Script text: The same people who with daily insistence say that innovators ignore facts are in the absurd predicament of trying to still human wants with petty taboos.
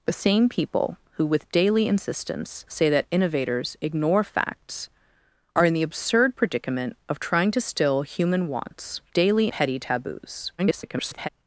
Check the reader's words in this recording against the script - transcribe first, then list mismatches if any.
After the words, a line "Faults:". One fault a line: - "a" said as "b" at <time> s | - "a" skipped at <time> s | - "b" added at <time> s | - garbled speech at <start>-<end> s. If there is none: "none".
The same people who with daily insistence say that innovators ignore facts are in the absurd predicament of trying to still human wants daily petty taboos. [garbled]
Faults:
- "with" said as "daily" at 9.1 s
- garbled speech at 10.6-11.3 s